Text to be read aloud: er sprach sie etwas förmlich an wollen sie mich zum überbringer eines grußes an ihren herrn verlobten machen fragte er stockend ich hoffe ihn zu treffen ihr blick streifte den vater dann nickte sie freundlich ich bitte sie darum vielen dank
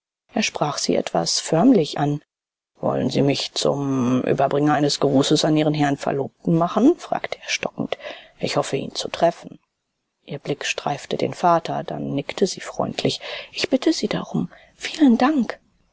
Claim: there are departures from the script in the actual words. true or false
false